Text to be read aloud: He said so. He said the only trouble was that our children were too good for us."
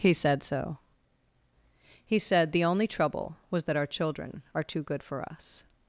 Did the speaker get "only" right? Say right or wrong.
right